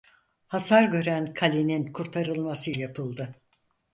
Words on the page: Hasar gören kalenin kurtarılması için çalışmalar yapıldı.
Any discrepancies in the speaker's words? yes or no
yes